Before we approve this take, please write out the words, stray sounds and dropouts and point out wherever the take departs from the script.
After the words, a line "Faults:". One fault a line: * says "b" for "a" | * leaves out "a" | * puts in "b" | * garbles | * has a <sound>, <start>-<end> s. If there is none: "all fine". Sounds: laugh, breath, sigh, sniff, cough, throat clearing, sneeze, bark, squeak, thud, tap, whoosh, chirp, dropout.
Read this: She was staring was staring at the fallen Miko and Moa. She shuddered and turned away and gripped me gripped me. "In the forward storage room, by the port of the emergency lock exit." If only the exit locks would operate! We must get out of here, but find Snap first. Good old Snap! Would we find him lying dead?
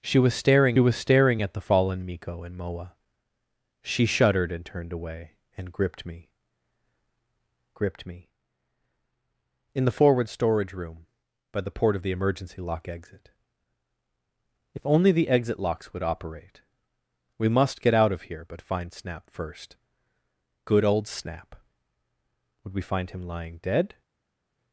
She was staring was staring at the fallen Miko and Moa. She shuddered and turned away and gripped me gripped me. "In the forward storage room, by the port of the emergency lock exit." If only the exit locks would operate! We must get out of here, but find Snap first. Good old Snap! Would we find him lying dead?
Faults:
all fine